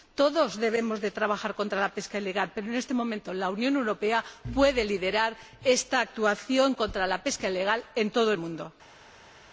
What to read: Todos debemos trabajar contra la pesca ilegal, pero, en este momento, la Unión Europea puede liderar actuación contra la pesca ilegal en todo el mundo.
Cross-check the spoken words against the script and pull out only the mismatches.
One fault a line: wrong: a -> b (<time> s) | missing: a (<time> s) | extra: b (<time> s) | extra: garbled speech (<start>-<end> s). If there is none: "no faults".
extra: esta (5.6 s)